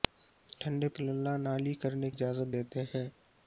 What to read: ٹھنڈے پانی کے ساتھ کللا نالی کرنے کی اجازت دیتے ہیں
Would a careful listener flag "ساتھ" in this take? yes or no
yes